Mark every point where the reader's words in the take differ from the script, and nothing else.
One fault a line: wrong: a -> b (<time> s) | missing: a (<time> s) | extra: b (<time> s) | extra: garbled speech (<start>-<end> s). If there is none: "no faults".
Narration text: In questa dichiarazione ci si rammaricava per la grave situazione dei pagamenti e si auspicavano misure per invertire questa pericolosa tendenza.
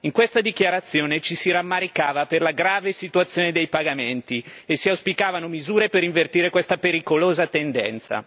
no faults